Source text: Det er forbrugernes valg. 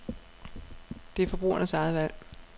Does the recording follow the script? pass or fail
fail